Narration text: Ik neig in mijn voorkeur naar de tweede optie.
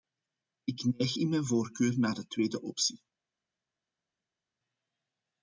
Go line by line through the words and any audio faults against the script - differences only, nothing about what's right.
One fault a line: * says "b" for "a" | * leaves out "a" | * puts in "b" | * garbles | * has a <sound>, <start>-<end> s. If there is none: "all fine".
all fine